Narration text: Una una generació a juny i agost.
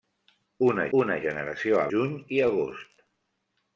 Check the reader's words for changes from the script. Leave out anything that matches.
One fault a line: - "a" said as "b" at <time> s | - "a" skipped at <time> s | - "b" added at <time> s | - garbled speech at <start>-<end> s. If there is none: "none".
none